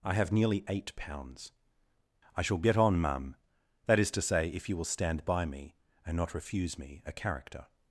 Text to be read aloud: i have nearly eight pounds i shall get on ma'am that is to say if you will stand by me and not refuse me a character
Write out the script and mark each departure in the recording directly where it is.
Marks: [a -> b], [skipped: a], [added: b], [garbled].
i have nearly eight pounds i shall get on ma'am that is to say if you will stand by me and not refuse me a character